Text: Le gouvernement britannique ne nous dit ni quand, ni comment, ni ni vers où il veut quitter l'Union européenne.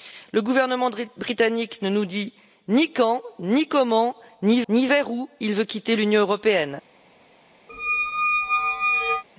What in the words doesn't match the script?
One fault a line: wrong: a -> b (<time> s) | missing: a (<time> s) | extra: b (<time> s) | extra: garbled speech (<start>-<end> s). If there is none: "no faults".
no faults